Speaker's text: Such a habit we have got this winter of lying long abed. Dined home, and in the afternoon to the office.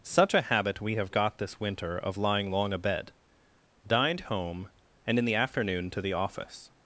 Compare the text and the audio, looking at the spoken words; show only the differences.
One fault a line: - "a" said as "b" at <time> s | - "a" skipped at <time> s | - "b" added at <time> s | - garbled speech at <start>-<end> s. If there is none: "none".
none